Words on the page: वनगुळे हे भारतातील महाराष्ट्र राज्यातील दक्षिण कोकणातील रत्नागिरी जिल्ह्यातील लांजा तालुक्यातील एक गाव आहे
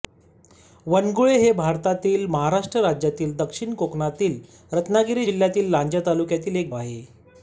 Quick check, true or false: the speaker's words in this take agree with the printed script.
false